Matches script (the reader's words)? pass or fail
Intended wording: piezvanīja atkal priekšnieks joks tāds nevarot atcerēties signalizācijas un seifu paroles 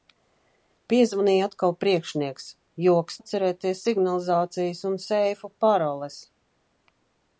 fail